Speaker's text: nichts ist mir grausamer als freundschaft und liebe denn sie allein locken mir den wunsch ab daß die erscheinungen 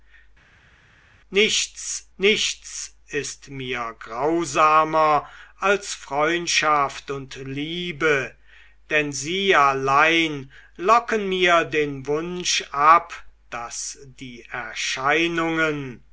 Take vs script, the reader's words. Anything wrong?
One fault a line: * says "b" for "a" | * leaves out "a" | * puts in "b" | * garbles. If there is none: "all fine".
* puts in "nichts"